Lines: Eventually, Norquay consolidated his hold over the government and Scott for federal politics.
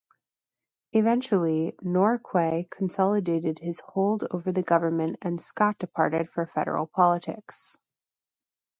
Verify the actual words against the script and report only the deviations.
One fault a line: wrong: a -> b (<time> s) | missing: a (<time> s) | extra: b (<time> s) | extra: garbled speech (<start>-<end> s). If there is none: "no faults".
extra: departed (5.8 s)